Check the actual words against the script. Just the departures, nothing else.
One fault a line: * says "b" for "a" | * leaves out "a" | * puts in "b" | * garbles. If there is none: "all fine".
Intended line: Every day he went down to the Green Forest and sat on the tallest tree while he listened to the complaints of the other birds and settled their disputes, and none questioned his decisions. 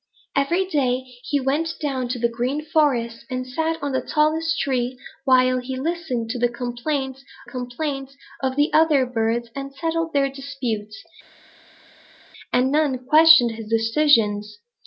* puts in "complaints"